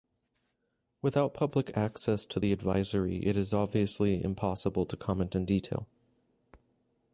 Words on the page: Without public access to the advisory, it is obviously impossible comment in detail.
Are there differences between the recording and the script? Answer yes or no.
yes